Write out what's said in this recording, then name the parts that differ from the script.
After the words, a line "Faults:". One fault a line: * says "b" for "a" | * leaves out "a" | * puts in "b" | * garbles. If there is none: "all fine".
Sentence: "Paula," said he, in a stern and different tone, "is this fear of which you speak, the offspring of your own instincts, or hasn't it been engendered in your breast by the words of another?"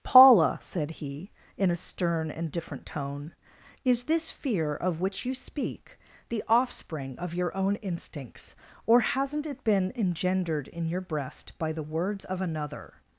"Paula," said he, in a stern and different tone, "is this fear of which you speak, the offspring of your own instincts, or hasn't it been engendered in your breast by the words of another?"
Faults:
all fine